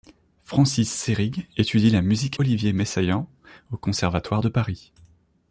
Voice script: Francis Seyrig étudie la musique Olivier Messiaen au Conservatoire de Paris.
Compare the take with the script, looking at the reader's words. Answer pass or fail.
pass